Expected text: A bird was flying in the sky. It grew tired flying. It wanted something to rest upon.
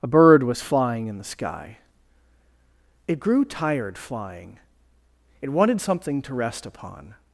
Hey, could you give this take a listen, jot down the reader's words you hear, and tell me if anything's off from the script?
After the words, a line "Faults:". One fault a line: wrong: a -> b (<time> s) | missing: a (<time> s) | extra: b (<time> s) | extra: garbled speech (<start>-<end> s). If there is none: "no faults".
A bird was flying in the sky. It grew tired flying. It wanted something to rest upon.
Faults:
no faults